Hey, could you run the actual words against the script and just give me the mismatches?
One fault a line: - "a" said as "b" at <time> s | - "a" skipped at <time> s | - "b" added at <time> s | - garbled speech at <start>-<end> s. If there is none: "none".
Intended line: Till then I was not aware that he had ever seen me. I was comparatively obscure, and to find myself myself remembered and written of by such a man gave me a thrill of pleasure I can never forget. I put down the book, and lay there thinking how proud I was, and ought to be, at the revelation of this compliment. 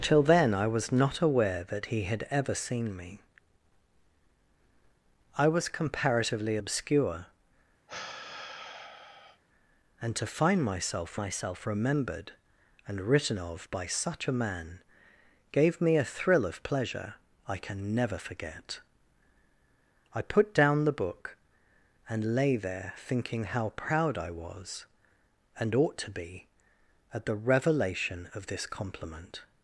none